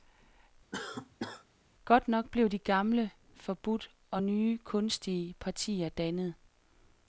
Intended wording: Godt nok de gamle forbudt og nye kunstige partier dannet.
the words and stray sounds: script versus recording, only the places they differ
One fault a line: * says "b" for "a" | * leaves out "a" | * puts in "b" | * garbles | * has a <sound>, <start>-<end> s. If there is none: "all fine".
* has a cough, 0.7-1.5 s
* puts in "blev"